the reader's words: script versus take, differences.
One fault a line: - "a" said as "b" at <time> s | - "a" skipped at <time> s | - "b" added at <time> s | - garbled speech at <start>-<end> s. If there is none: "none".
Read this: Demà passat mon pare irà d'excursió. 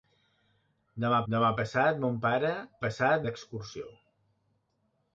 - "demà" added at 1.3 s
- "irà" said as "passat" at 2.8 s